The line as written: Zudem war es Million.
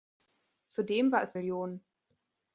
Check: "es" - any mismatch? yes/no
no